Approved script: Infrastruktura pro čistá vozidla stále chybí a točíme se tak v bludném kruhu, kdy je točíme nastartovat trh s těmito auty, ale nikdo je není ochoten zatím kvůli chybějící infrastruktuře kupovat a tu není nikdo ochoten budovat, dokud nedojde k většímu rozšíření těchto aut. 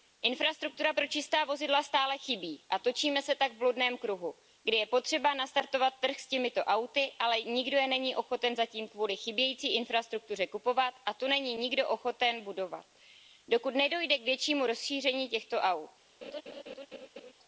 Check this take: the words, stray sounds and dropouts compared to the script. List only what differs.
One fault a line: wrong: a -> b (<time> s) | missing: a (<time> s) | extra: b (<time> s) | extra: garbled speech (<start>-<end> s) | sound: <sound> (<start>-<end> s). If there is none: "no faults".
wrong: točíme -> potřeba (4.9 s)
sound: laugh (16.2-17.3 s)